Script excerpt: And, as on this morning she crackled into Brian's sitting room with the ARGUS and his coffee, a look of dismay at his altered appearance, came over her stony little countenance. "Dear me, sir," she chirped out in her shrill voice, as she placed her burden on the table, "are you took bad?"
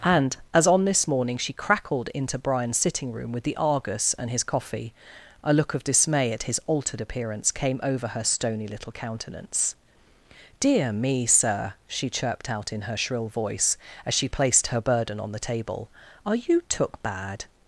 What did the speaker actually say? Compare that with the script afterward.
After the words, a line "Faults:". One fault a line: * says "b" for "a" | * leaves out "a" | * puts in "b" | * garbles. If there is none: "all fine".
And, as on this morning she crackled into Brian's sitting room with the ARGUS and his coffee, a look of dismay at his altered appearance, came over her stony little countenance. "Dear me, sir," she chirped out in her shrill voice, as she placed her burden on the table, "are you took bad?"
Faults:
all fine